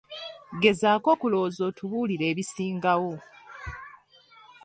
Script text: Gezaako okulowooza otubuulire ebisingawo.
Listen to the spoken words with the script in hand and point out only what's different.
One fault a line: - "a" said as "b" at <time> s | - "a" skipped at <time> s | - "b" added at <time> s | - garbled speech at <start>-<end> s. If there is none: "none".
none